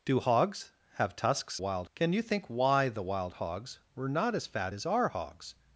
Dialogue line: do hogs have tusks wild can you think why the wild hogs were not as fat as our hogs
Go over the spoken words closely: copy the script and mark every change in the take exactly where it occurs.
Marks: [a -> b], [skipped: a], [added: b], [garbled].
do hogs have tusks wild can you think why the wild hogs were not as fat as our hogs